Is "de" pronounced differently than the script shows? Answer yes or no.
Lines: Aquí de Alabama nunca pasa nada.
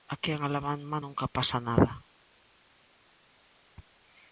yes